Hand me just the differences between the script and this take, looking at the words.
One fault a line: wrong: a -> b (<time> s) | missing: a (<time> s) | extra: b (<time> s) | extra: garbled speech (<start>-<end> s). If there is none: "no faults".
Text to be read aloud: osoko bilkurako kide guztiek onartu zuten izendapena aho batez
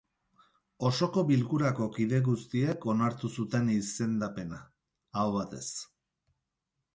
no faults